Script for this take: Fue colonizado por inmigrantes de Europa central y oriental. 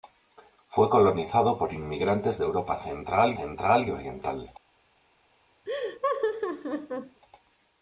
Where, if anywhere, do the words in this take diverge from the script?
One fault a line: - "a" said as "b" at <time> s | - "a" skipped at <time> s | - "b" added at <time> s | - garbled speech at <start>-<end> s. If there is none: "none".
- "central" added at 3.4 s